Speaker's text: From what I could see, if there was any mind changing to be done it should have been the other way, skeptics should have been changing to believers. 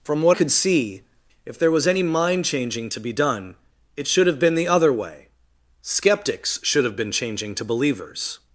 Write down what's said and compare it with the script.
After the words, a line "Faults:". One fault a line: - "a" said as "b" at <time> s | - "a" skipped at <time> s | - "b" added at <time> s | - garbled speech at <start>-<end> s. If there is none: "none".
From what could see, if there was any mind changing to be done it should have been the other way, skeptics should have been changing to believers.
Faults:
- "I" skipped at 0.4 s